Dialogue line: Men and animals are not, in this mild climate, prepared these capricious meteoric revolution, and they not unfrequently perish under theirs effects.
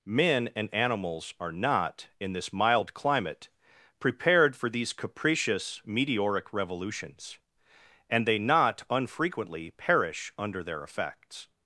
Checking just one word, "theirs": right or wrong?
wrong